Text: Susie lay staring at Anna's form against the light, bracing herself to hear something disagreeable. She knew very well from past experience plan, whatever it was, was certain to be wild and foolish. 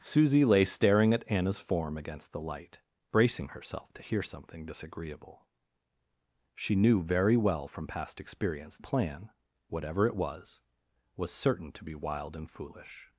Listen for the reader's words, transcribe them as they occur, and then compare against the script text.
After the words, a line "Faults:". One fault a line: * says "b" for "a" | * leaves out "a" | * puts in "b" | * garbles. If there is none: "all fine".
Susie lay staring at Anna's form against the light, bracing herself to hear something disagreeable. She knew very well from past experience plan, whatever it was, was certain to be wild and foolish.
Faults:
all fine